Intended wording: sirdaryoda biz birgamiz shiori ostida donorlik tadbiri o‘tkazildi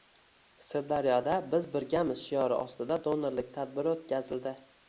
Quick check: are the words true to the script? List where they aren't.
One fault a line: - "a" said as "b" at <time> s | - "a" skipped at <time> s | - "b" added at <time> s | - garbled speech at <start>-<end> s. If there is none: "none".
none